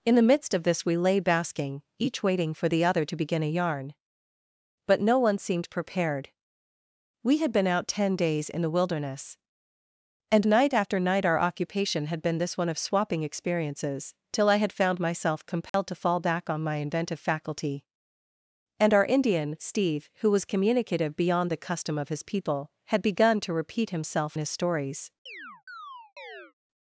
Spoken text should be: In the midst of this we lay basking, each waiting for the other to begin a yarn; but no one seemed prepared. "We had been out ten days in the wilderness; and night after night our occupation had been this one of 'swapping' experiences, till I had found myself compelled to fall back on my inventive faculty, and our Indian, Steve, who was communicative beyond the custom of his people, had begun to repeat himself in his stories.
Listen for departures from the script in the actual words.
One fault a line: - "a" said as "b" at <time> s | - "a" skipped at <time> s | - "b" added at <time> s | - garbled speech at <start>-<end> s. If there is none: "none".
- "in" skipped at 24.4 s